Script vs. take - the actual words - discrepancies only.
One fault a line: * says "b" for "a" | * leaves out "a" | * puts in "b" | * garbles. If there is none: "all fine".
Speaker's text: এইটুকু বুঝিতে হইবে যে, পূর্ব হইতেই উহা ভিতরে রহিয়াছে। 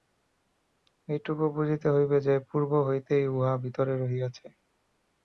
all fine